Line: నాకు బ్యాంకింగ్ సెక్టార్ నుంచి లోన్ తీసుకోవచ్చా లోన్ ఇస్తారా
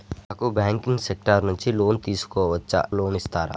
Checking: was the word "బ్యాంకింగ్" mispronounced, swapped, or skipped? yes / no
no